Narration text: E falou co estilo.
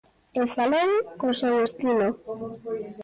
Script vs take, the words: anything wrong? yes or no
yes